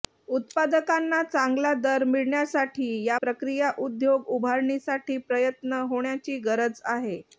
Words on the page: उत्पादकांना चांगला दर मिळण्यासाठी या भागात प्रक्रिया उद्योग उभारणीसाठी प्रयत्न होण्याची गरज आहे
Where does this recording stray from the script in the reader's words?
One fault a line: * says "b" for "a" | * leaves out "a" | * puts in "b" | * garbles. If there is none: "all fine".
* leaves out "भागात"